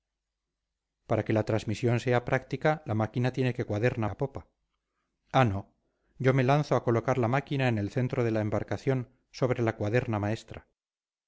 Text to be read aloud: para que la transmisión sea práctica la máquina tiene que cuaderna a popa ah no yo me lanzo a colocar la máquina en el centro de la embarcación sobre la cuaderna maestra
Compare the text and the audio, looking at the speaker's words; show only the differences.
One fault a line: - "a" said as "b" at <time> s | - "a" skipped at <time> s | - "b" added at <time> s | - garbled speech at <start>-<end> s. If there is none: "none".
none